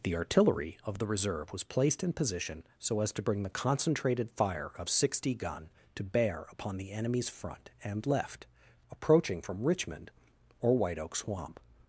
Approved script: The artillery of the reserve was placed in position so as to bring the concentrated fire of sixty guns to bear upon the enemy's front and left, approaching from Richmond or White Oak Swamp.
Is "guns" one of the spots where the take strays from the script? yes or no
yes